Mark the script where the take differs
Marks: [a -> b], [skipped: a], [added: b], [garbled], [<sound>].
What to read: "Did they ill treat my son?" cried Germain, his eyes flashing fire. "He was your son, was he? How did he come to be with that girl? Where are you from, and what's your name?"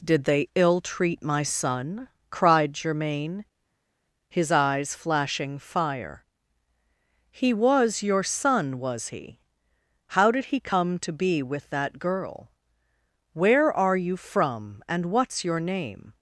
"Did they ill treat my son?" cried Germain, his eyes flashing fire. "He was your son, was he? How did he come to be with that girl? Where are you from, and what's your name?"